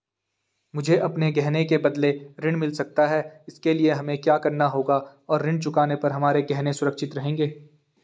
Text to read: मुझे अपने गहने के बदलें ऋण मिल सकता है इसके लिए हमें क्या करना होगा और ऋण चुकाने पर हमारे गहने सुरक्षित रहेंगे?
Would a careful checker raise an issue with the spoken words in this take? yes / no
no